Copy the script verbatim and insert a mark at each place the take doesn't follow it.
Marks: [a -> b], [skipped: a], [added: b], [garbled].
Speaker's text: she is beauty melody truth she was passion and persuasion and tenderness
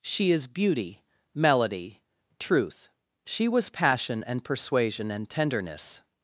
she is beauty melody truth she was passion and persuasion and tenderness